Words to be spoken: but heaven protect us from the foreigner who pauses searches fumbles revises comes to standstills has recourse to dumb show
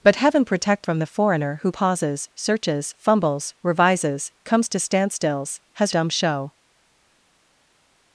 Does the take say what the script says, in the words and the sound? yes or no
no